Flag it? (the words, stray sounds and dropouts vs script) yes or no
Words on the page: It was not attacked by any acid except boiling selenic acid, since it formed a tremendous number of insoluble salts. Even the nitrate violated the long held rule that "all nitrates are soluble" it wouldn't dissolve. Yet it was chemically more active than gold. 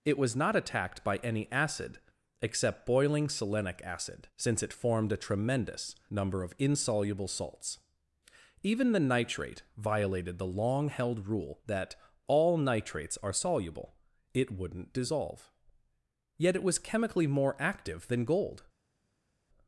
no